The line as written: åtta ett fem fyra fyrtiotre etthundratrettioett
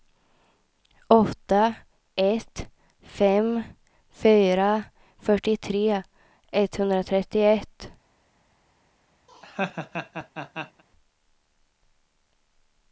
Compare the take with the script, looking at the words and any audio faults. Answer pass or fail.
fail